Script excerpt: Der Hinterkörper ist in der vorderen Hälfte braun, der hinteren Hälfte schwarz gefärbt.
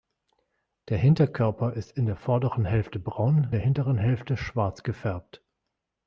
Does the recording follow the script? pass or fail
pass